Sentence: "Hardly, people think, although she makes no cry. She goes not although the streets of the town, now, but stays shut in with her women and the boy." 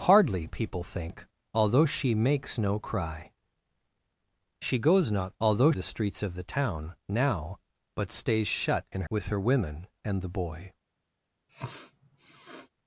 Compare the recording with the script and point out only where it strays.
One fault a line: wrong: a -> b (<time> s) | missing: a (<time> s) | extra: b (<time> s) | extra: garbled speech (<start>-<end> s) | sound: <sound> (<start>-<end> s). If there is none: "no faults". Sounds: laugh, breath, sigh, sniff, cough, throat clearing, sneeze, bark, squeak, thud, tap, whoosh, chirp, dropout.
sound: sniff (11.5-12.7 s)